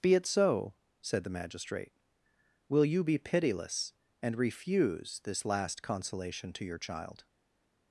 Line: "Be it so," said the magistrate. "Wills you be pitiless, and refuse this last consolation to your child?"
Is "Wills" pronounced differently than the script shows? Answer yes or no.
yes